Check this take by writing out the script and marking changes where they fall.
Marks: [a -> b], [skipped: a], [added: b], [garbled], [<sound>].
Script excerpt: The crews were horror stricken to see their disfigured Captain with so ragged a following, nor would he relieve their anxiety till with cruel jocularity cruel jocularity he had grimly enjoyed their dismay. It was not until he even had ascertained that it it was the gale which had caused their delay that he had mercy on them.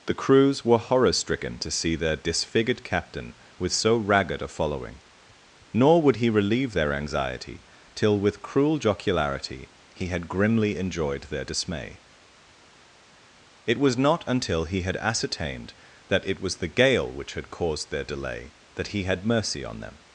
The crews were horror stricken to see their disfigured Captain with so ragged a following, nor would he relieve their anxiety till with cruel jocularity [skipped: cruel jocularity] he had grimly enjoyed their dismay. It was not until he [skipped: even] had ascertained that it [skipped: it] was the gale which had caused their delay that he had mercy on them.